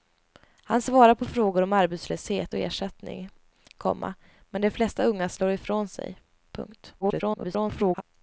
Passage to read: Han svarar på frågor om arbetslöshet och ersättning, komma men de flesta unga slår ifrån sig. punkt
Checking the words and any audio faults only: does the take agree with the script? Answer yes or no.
no